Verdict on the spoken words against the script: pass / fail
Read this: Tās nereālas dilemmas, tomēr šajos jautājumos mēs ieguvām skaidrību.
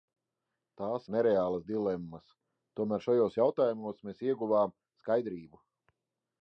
pass